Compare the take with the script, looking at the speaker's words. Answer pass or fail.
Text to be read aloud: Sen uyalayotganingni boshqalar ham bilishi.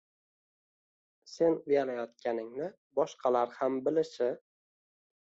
pass